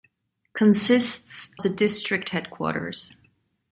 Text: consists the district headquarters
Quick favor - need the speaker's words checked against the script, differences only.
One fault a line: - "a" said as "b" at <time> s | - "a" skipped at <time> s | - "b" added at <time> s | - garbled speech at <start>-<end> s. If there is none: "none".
none